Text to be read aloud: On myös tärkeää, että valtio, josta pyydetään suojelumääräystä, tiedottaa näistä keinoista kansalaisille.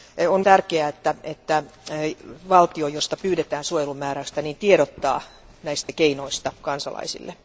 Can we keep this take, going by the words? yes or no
no